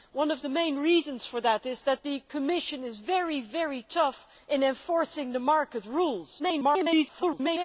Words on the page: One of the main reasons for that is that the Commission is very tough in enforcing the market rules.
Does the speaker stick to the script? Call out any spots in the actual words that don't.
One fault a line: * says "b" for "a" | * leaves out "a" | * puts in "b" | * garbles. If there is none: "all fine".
* garbles